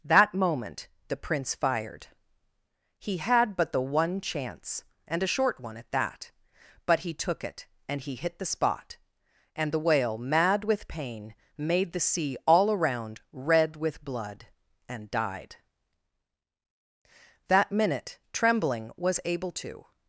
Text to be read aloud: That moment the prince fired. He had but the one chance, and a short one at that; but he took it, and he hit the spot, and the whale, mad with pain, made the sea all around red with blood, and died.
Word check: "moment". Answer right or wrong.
right